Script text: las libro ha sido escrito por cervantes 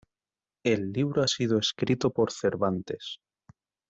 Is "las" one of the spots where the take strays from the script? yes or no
yes